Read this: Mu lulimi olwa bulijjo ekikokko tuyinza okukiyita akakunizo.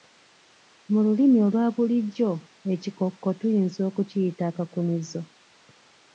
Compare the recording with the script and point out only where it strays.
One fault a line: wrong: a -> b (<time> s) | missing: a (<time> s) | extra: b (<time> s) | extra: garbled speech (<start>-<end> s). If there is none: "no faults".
no faults